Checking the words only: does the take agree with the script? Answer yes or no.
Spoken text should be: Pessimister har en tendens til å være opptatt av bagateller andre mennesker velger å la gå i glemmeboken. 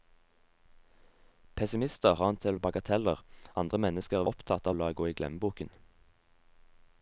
no